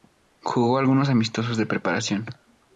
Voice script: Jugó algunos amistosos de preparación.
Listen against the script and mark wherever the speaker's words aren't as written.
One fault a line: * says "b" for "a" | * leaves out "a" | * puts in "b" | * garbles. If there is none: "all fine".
all fine